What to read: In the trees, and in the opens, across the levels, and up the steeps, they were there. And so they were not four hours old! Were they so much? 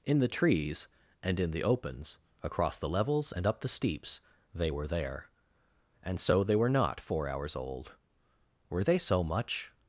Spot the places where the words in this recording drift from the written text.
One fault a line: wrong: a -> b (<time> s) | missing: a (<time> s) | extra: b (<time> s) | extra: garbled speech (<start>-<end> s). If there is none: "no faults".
no faults